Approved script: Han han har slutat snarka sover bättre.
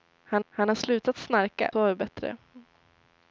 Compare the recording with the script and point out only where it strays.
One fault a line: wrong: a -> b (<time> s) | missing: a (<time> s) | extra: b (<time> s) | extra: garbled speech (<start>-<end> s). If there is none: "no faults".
no faults